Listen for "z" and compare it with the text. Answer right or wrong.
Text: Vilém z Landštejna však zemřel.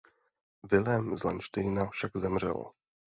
right